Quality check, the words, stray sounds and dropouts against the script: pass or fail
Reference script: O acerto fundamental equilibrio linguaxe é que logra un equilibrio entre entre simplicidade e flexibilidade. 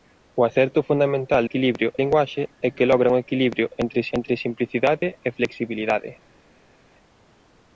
pass